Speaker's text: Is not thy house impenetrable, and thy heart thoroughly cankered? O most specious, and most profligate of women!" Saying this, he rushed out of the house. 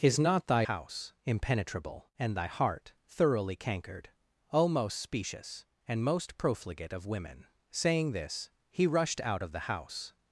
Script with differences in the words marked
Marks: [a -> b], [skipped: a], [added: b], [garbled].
Is not thy house impenetrable, and thy heart thoroughly cankered? O most specious, and most profligate of women!" Saying this, he rushed out of the house.